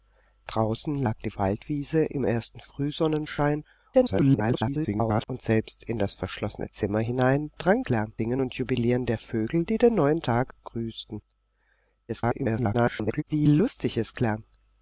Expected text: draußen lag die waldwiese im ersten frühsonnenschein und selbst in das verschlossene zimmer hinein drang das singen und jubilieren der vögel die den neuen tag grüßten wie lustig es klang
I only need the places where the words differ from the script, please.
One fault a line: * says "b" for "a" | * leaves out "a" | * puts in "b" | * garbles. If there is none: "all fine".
* garbles
* says "klang" for "das"
* garbles